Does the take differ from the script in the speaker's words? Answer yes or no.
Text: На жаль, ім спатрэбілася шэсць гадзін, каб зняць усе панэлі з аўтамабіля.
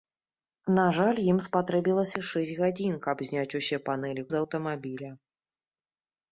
no